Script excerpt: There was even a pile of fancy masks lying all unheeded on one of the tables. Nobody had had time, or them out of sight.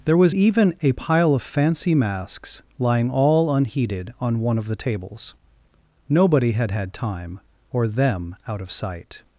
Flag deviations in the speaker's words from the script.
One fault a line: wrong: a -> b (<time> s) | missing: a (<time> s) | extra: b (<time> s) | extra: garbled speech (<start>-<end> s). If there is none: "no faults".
no faults